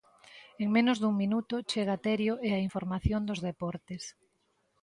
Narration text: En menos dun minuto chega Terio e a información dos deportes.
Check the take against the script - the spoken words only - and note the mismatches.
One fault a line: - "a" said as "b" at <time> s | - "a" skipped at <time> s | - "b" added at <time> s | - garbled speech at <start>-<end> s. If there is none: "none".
none